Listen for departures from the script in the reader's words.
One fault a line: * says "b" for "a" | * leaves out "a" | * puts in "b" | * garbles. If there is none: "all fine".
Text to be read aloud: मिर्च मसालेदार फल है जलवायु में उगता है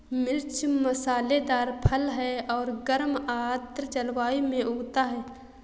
* puts in "और गर्म आर्द्र"